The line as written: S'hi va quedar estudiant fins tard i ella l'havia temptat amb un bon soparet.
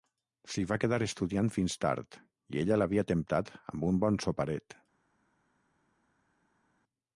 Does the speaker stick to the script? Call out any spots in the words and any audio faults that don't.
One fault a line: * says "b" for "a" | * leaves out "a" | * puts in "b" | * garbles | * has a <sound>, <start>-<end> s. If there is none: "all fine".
all fine